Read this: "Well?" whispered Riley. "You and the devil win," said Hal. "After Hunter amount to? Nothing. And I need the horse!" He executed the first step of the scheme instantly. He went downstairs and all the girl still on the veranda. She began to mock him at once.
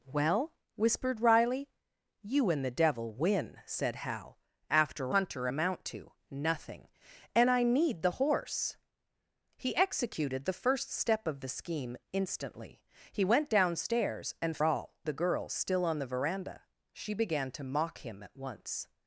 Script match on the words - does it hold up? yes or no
yes